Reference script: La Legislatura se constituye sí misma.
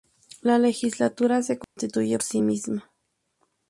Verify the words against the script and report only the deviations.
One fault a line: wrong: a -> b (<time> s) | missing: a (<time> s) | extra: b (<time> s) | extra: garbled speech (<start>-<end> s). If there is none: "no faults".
no faults